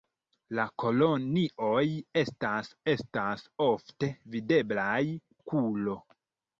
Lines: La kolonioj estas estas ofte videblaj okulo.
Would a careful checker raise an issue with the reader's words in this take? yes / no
no